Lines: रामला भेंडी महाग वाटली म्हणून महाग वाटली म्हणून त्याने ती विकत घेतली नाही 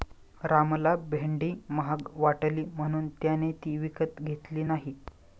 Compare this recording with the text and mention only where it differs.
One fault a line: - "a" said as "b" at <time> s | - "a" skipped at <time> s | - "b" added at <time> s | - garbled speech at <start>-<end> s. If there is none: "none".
- "महाग वाटली म्हणून" skipped at 3.1 s